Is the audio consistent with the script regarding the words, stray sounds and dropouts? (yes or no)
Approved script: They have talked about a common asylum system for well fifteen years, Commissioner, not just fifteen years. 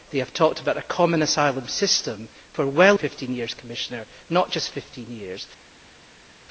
yes